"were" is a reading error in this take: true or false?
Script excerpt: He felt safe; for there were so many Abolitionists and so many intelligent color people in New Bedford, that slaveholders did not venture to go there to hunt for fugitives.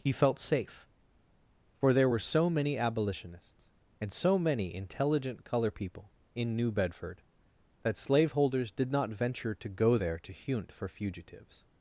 false